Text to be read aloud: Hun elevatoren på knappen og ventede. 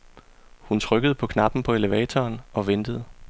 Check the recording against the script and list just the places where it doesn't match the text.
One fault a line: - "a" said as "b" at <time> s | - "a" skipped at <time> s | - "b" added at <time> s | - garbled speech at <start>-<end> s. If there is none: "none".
- "elevatoren" said as "trykkede" at 0.8 s
- "på elevatoren" added at 1.6 s